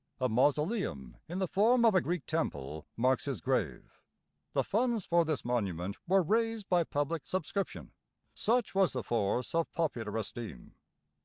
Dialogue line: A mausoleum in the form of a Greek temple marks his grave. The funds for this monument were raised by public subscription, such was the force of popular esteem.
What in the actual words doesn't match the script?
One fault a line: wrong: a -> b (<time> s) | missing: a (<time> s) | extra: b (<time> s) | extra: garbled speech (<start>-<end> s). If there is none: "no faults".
no faults